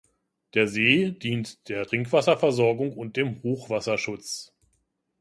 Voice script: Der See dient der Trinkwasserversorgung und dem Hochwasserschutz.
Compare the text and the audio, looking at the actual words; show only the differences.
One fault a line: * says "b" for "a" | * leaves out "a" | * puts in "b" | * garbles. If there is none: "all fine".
all fine